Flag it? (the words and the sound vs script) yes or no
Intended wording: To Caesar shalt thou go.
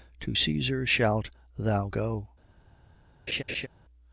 yes